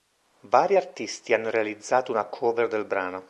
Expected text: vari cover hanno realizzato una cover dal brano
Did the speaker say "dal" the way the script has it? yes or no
no